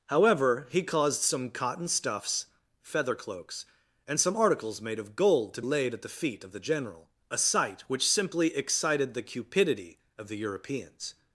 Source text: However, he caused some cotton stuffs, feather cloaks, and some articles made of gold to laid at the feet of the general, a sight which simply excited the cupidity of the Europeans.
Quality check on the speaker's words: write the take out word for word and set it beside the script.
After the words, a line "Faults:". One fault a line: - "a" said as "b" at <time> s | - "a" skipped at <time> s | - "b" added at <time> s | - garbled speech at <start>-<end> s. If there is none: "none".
However, he caused some cotton stuffs, feather cloaks, and some articles made of gold to laid at the feet of the general, a sight which simply excited the cupidity of the Europeans.
Faults:
none